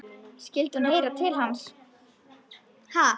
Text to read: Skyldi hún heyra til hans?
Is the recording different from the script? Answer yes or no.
no